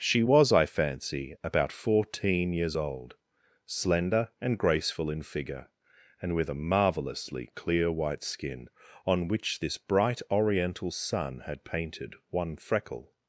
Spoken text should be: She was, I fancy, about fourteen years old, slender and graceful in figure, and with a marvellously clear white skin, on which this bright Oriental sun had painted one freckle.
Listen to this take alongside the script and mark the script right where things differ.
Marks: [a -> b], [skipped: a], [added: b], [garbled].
She was, I fancy, about fourteen years old, slender and graceful in figure, and with a marvellously clear white skin, on which this bright Oriental sun had painted one freckle.